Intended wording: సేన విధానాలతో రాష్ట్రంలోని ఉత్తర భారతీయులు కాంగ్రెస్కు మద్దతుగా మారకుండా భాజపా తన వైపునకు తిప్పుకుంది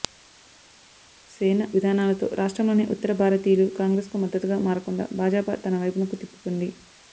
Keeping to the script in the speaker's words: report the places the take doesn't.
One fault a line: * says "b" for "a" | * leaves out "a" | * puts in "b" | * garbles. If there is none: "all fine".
all fine